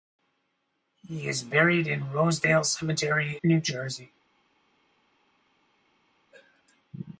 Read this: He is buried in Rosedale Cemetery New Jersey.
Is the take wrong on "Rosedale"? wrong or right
right